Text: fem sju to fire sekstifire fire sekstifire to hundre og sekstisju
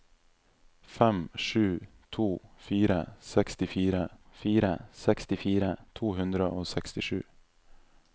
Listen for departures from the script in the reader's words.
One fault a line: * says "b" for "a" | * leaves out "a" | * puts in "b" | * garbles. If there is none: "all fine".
all fine